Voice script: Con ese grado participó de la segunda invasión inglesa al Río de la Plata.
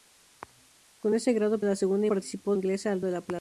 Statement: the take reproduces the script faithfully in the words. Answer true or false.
false